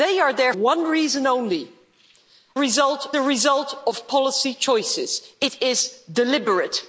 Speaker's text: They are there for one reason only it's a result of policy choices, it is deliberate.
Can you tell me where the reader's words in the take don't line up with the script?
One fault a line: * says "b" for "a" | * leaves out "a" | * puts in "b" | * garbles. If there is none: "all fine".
* leaves out "for"
* says "result" for "it's"